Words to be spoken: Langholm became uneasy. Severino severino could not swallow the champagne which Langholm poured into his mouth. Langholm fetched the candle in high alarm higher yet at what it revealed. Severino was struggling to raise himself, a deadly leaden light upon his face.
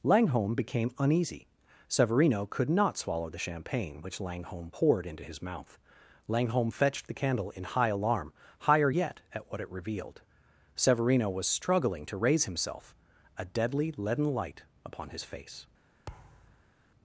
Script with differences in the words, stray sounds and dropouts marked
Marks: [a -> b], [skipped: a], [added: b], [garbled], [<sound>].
Langholm became uneasy. Severino [skipped: severino] could not swallow the champagne which Langholm poured into his mouth. Langholm fetched the candle in high alarm higher yet at what it revealed. Severino was struggling to raise himself, a deadly leaden light upon his face. [thud]